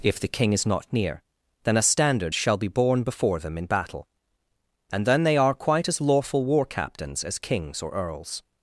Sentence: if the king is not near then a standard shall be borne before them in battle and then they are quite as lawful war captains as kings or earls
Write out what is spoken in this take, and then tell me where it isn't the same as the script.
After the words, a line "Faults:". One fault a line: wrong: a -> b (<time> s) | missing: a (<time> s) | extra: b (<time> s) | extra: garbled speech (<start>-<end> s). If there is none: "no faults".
if the king is not near then a standard shall be borne before them in battle and then they are quite as lawful war captains as kings or earls
Faults:
no faults